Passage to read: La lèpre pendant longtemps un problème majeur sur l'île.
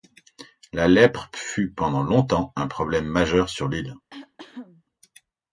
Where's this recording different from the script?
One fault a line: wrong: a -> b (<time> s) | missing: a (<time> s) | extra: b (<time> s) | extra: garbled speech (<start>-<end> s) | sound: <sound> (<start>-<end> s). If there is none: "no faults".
extra: fut (1.4 s)
sound: cough (4.1-4.8 s)